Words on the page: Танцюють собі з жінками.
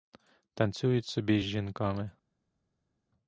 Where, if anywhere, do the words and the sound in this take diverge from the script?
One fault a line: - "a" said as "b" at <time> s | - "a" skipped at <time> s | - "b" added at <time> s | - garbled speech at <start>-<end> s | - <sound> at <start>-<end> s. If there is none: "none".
none